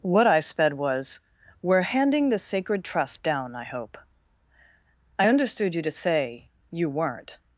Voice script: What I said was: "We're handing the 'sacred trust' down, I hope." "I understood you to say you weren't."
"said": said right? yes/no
no